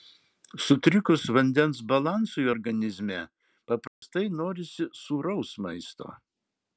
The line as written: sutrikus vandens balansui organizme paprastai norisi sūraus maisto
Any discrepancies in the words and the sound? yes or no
yes